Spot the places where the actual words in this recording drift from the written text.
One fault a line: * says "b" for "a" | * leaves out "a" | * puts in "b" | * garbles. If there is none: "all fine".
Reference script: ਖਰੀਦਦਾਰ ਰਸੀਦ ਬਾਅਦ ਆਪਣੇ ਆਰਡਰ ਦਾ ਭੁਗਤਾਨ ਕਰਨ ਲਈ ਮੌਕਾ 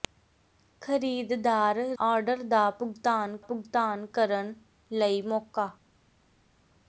* leaves out "ਰਸੀਦ ਬਾਅਦ ਆਪਣੇ"
* puts in "ਭੁਗਤਾਨ"